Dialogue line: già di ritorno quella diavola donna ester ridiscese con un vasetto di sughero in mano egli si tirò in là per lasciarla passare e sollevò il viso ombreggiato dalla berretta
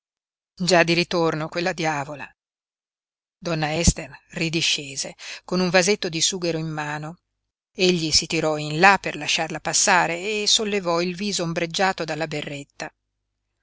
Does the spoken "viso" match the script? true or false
true